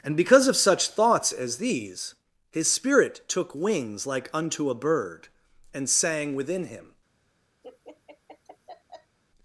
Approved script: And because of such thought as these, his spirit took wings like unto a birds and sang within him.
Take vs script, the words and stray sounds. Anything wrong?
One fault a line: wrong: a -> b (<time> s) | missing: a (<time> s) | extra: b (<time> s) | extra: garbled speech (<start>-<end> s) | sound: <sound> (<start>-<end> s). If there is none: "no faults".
wrong: thought -> thoughts (0.9 s)
wrong: birds -> bird (4.8 s)
sound: laugh (7.6-9.2 s)